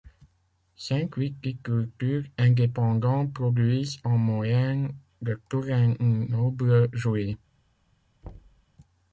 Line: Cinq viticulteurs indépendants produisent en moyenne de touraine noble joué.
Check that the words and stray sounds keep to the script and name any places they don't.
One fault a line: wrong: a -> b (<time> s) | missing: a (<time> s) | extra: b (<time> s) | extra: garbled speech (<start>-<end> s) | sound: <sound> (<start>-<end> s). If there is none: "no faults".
sound: thud (8.2-8.7 s)